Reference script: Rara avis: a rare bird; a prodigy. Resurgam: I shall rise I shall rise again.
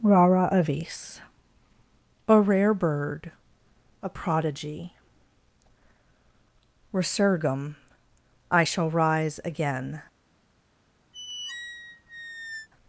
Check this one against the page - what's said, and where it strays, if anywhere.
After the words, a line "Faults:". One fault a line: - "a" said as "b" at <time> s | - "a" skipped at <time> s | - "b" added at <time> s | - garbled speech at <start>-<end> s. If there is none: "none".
Rara avis: a rare bird; a prodigy. Resurgam: I shall rise again.
Faults:
- "I shall rise" skipped at 9.4 s